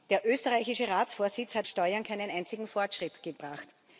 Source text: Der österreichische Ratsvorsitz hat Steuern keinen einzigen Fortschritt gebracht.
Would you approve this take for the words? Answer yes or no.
yes